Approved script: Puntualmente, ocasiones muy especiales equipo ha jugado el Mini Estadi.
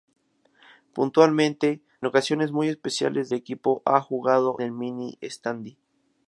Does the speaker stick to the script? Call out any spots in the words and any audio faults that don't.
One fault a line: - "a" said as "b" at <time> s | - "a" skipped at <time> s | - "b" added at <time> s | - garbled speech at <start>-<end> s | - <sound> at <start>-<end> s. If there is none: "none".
none